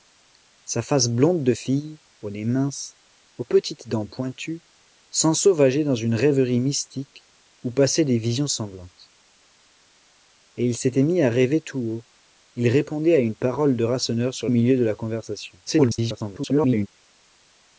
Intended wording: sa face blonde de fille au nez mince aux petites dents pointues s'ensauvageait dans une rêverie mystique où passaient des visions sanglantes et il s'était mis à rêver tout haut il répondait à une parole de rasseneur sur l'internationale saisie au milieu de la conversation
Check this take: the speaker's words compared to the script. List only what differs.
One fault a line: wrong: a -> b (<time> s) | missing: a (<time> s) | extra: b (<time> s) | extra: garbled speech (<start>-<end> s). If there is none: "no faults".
missing: l'internationale saisie (14.5 s)
extra: garbled speech (15.7-16.9 s)